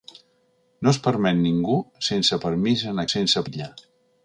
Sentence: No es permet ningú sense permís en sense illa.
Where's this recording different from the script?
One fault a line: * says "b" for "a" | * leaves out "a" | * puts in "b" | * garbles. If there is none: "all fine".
all fine